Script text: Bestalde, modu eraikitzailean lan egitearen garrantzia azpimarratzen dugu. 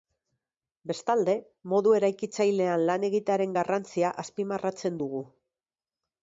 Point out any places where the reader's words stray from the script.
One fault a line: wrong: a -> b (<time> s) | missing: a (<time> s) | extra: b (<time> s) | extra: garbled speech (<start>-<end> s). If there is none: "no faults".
no faults